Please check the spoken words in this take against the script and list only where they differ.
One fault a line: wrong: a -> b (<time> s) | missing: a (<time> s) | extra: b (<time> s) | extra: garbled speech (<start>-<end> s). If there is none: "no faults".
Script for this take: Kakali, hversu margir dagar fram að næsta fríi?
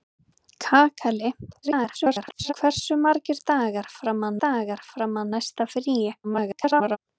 extra: garbled speech (1.6-2.5 s)
extra: dagar fram að (4.5 s)
extra: garbled speech (6.2-7.0 s)